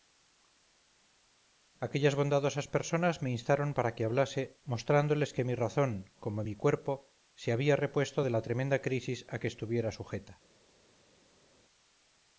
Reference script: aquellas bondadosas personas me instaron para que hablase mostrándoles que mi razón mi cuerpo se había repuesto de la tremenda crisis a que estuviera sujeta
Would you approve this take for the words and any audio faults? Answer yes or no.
no